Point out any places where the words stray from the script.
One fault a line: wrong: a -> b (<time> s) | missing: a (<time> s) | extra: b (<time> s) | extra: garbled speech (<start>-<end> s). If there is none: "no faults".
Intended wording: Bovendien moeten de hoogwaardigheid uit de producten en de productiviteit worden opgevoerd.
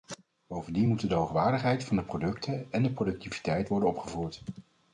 wrong: uit -> van (1.8 s)